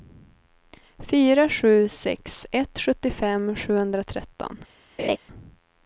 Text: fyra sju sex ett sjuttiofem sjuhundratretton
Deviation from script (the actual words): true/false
false